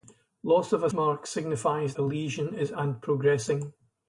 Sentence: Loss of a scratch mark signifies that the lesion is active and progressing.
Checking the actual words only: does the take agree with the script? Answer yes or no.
no